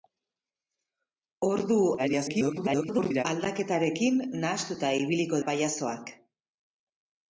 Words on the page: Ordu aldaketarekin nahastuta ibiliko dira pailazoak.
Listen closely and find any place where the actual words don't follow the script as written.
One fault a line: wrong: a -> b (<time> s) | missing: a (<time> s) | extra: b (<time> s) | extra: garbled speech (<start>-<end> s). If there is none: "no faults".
extra: garbled speech (2.0-3.3 s)
missing: dira (5.4 s)